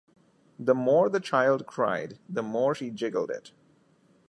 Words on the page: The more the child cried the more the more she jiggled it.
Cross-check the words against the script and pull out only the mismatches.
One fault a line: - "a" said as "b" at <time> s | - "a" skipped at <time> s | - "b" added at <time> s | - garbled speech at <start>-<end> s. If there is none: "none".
- "the more" skipped at 2.7 s